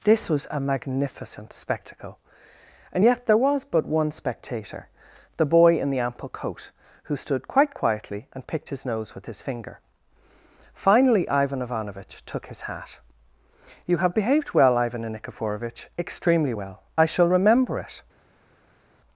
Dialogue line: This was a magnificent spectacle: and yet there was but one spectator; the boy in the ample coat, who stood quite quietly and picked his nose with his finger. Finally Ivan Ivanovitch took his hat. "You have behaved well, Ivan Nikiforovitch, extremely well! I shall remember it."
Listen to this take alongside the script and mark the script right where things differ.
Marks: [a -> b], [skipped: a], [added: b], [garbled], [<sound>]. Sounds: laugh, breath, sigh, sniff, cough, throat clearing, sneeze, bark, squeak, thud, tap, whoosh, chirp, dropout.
This was a magnificent spectacle: and yet there was but one spectator; the boy in the ample coat, who stood quite quietly and picked his nose with his finger. Finally Ivan Ivanovitch took his hat. "You have behaved well, Ivan Nikiforovitch, extremely well! I shall remember it."